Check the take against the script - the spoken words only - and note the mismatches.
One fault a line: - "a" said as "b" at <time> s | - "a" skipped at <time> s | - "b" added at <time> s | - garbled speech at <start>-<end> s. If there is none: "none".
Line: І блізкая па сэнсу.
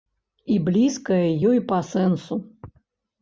- "ёй" added at 1.5 s